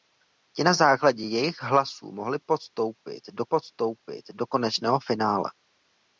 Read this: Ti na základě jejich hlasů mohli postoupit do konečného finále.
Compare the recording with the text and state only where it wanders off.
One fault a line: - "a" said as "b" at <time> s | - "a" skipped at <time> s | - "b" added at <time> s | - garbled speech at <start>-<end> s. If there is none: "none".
- "postoupit do" added at 3.5 s